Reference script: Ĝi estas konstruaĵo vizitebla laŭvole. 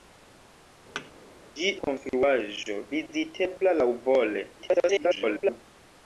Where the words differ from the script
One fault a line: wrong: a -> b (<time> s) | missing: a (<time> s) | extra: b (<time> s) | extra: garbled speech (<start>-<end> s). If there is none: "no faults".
missing: estas (1.7 s)
extra: garbled speech (4.6-5.6 s)